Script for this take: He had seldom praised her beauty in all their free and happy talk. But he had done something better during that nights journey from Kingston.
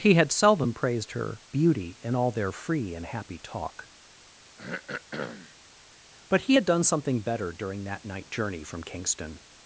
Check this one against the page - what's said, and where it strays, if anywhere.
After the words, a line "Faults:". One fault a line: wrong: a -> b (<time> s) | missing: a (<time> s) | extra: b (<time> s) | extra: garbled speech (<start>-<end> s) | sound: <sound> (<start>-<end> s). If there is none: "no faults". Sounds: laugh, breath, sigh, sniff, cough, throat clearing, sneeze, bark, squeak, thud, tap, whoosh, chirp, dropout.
He had seldom praised her beauty in all their free and happy talk. But he had done something better during that night journey from Kingston.
Faults:
sound: throat clearing (4.6-5.6 s)
wrong: nights -> night (8.0 s)